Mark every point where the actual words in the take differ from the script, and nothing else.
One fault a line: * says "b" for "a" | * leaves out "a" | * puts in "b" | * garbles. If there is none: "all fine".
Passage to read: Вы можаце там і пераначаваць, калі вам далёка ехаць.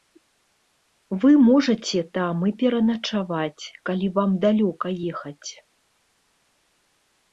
all fine